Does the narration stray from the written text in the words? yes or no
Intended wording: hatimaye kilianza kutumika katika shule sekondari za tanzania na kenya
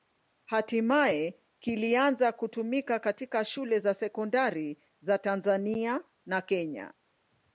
yes